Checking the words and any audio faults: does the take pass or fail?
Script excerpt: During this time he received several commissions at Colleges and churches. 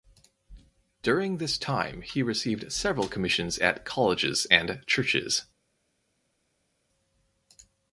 pass